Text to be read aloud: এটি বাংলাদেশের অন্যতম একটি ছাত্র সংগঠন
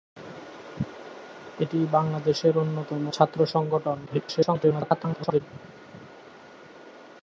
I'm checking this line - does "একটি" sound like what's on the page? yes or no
no